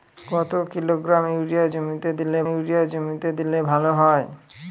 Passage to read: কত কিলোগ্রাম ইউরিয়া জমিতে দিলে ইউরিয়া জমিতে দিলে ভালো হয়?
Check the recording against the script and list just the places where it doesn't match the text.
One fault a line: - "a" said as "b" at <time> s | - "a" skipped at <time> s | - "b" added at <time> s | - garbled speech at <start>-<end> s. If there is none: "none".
none